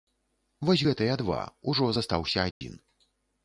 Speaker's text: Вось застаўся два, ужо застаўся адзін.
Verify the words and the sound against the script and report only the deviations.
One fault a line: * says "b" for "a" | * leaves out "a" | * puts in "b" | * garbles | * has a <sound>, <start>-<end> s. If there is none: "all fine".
* says "гэтыя" for "застаўся"
* has a dropout, 2.5-2.6 s